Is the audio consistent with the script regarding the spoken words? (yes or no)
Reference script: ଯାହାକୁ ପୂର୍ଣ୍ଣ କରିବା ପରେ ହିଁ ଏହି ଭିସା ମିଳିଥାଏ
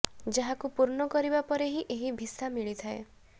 yes